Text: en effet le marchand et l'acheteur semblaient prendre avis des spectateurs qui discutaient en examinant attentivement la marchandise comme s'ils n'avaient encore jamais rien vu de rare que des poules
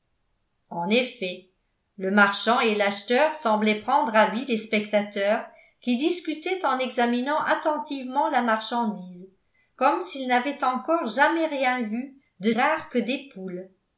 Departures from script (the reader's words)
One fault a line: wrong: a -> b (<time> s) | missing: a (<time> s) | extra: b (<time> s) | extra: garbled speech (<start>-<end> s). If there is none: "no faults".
no faults